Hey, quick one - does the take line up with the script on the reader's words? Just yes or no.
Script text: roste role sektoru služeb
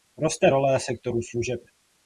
yes